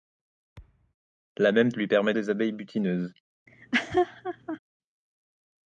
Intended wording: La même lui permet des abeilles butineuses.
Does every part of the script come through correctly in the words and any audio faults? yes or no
no